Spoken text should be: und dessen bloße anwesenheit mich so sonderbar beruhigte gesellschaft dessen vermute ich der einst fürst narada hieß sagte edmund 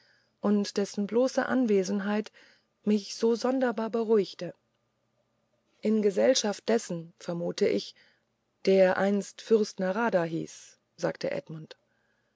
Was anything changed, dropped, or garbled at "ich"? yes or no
no